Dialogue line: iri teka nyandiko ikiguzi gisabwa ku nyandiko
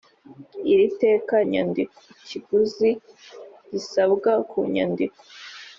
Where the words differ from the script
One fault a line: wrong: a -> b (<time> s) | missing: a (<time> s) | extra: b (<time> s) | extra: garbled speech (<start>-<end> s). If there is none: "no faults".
no faults